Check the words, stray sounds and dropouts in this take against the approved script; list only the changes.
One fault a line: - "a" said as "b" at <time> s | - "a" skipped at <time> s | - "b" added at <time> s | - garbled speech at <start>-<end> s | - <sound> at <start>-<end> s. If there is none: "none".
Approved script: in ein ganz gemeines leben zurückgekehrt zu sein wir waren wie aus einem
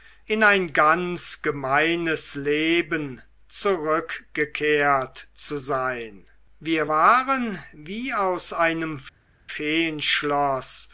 none